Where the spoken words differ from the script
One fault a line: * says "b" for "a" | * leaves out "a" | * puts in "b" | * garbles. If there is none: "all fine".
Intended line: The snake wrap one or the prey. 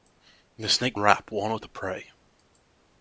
all fine